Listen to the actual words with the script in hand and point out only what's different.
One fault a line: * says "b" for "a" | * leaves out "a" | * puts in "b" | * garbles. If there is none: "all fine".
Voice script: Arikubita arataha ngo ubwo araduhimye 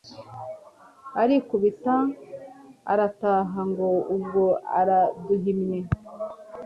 all fine